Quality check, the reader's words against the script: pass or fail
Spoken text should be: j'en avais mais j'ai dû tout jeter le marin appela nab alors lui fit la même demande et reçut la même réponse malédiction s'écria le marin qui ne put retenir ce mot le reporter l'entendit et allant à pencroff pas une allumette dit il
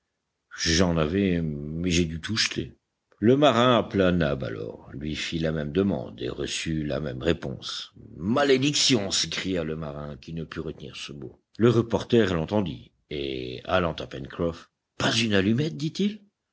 pass